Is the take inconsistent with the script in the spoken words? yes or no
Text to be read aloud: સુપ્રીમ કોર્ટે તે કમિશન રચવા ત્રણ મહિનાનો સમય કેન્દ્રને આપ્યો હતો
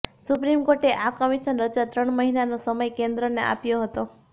yes